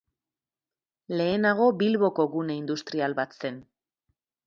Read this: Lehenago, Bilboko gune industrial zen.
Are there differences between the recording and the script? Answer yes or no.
yes